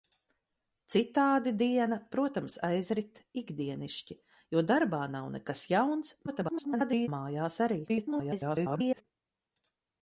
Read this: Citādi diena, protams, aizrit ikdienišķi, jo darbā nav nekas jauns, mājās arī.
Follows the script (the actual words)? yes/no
no